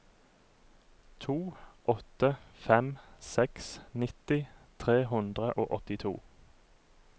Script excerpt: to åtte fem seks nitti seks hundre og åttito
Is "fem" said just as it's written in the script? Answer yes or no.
yes